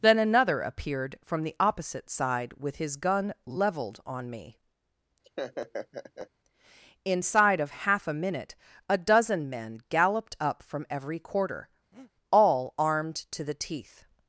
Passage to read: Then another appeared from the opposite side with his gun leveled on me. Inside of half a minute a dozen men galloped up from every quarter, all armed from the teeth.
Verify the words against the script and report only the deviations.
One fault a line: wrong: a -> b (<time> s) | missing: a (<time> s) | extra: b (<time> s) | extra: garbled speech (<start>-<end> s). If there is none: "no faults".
wrong: from -> to (13.3 s)